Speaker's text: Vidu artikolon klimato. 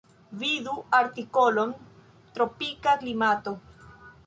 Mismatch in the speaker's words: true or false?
true